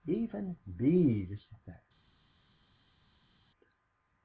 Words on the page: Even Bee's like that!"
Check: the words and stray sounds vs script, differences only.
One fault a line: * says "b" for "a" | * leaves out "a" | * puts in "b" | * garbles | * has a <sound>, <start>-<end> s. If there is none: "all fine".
* leaves out "like"